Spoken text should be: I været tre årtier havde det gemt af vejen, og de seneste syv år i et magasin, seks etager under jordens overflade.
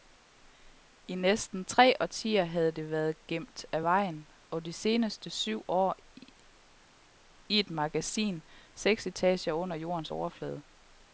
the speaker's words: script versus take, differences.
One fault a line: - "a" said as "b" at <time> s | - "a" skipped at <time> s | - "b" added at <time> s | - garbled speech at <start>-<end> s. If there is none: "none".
- "været" said as "næsten" at 1.1 s
- "været" added at 2.9 s